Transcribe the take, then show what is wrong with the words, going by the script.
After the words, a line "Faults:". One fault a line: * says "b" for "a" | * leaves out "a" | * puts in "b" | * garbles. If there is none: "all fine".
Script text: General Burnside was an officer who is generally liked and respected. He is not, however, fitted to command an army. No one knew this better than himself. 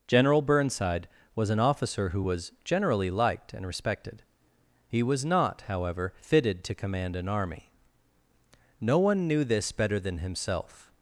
General Burnside was an officer who was generally liked and respected. He was not, however, fitted to command an army. No one knew this better than himself.
Faults:
* says "was" for "is"
* says "was" for "is"